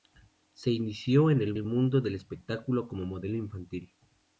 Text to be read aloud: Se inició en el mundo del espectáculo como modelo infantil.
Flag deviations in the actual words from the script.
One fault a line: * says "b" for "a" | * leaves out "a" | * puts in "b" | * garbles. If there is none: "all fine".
* puts in "el"